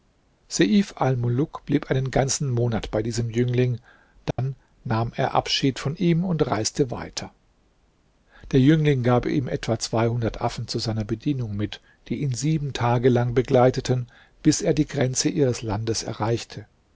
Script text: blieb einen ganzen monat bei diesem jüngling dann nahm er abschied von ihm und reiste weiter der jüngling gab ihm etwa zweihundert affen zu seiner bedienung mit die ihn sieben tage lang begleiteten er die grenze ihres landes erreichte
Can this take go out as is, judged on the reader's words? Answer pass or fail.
fail